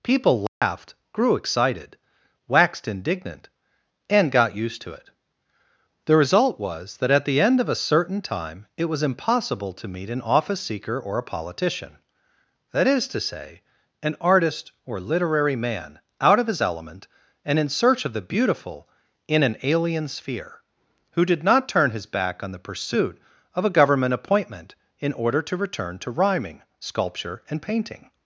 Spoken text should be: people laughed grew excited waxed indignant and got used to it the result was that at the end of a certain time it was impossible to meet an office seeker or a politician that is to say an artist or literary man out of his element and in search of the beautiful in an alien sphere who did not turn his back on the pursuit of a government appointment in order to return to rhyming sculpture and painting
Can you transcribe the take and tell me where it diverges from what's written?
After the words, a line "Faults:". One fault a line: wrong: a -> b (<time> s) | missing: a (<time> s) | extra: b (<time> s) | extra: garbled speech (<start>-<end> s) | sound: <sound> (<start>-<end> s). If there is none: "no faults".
people laughed grew excited waxed indignant and got used to it the result was that at the end of a certain time it was impossible to meet an office seeker or a politician that is to say an artist or literary man out of his element and in search of the beautiful in an alien sphere who did not turn his back on the pursuit of a government appointment in order to return to rhyming sculpture and painting
Faults:
sound: dropout (0.5-0.6 s)